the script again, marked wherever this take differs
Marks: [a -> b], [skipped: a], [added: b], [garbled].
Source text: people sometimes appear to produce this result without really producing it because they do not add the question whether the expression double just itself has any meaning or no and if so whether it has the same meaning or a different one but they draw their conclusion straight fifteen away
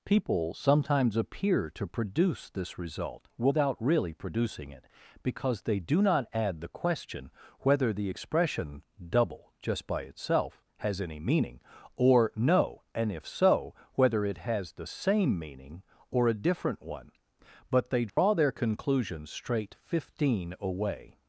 people sometimes appear to produce this result without really producing it because they do not add the question whether the expression double just [added: by] itself has any meaning or no and if so whether it has the same meaning or a different one but they draw their conclusion straight fifteen away